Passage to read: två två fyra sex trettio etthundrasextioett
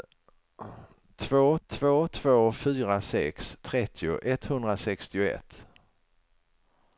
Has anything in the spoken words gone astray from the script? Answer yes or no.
yes